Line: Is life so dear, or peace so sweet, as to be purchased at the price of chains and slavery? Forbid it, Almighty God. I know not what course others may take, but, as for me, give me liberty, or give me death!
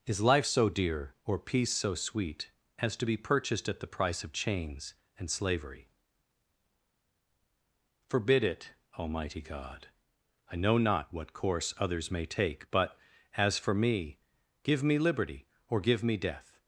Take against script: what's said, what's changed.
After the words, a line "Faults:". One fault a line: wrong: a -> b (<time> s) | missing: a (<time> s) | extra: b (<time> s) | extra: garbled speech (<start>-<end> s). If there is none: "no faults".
Is life so dear, or peace so sweet, as to be purchased at the price of chains and slavery? Forbid it, Almighty God. I know not what course others may take, but, as for me, give me liberty, or give me death!
Faults:
no faults